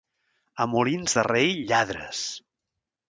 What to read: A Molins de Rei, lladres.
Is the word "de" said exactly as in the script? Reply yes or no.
yes